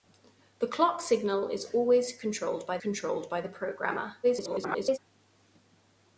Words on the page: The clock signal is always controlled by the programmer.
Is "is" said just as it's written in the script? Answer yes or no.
yes